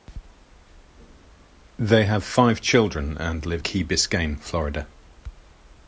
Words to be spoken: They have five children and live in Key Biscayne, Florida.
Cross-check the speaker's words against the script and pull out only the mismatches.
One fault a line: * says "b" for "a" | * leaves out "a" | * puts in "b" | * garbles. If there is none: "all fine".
* leaves out "in"